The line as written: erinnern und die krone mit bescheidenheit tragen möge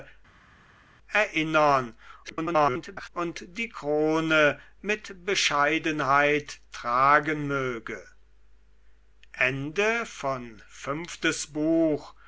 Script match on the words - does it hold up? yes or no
no